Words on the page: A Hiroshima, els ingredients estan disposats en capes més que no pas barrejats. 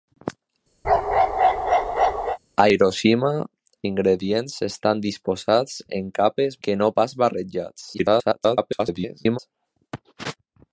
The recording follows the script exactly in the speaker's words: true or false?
false